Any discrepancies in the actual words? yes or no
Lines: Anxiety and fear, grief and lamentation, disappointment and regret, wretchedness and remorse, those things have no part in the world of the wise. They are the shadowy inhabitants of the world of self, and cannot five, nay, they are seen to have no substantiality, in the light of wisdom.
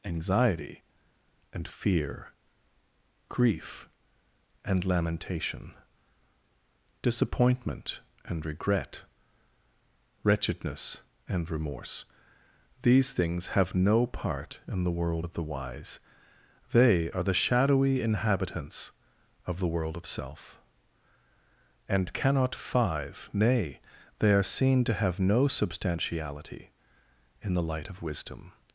yes